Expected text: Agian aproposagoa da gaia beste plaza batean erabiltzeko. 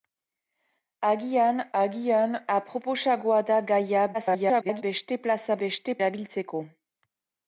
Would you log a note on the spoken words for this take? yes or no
yes